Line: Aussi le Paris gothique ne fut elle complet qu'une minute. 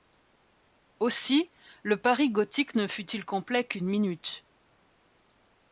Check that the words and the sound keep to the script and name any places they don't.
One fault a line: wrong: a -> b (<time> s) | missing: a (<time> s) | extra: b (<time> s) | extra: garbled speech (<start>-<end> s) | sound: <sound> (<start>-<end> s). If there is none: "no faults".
wrong: elle -> il (3.1 s)